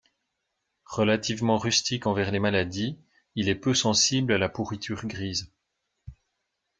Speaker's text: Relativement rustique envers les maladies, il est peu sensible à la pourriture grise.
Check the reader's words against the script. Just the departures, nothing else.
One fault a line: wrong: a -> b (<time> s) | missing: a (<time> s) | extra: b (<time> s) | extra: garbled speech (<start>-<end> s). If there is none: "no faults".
no faults